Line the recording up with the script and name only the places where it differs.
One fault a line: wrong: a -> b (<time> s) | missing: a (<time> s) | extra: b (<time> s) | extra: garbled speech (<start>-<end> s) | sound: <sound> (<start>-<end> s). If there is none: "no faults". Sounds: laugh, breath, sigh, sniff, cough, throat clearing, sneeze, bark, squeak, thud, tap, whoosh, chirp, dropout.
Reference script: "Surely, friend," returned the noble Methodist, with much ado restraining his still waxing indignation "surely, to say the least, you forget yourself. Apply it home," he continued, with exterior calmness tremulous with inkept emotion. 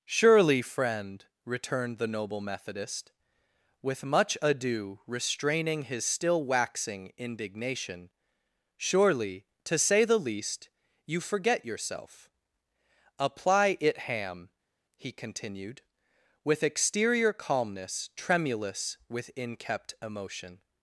wrong: home -> ham (14.0 s)